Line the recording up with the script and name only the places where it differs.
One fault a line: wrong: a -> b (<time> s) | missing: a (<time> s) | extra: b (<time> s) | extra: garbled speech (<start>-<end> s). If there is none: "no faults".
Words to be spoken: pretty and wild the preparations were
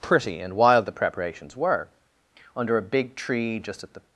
extra: under a big tree just at the (2.5 s)